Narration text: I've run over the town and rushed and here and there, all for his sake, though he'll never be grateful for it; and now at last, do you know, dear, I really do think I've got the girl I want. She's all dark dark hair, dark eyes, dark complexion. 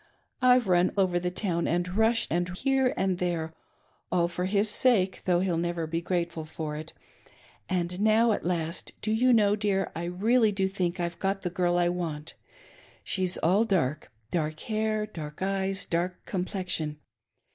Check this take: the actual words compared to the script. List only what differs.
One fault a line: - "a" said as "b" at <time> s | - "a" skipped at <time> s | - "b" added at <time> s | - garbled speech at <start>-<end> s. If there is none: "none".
none